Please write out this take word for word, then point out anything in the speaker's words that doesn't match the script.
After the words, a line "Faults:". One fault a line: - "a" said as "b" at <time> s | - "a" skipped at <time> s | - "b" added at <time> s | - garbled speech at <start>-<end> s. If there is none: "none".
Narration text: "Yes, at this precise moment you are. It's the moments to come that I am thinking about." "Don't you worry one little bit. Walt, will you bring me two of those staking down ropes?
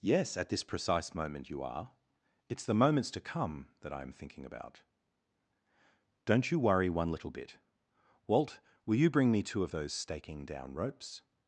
"Yes, at this precise moment you are. It's the moments to come that I am thinking about." "Don't you worry one little bit. Walt, will you bring me two of those staking down ropes?
Faults:
none